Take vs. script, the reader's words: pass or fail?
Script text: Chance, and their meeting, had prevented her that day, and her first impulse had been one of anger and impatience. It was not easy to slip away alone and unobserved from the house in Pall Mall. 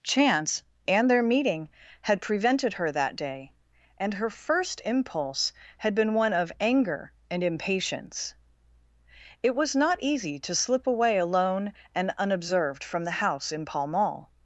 pass